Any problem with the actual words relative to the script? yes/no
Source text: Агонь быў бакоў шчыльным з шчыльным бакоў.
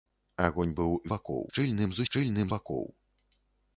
no